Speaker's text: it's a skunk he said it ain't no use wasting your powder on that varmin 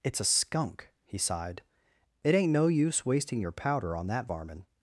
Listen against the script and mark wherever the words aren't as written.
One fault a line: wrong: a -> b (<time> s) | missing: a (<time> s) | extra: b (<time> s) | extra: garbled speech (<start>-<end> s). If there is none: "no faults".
wrong: said -> sighed (1.2 s)